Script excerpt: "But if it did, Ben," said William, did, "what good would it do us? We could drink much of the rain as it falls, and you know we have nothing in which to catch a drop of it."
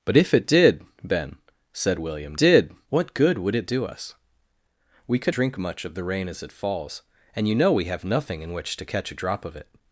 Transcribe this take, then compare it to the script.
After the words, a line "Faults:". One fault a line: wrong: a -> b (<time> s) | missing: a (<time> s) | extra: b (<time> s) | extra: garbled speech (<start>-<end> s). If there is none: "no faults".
"But if it did, Ben," said William, did, "what good would it do us? We could drink much of the rain as it falls, and you know we have nothing in which to catch a drop of it."
Faults:
no faults